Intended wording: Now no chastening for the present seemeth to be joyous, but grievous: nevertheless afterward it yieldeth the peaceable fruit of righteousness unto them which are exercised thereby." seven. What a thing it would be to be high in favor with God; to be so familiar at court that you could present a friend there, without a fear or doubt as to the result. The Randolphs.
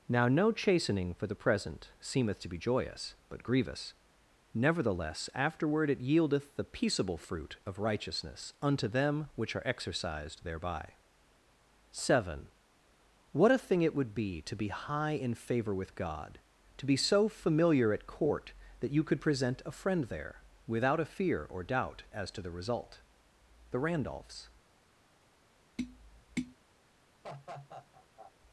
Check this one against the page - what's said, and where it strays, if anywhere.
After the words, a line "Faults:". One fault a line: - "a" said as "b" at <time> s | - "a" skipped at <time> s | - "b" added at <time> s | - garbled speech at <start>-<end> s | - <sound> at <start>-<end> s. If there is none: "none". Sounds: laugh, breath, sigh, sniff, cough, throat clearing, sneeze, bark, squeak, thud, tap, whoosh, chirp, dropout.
Now no chastening for the present seemeth to be joyous, but grievous: nevertheless afterward it yieldeth the peaceable fruit of righteousness unto them which are exercised thereby." seven. What a thing it would be to be high in favor with God; to be so familiar at court that you could present a friend there, without a fear or doubt as to the result. The Randolphs.
Faults:
- tap at 25.8-26.6 s
- laugh at 27.2-28.3 s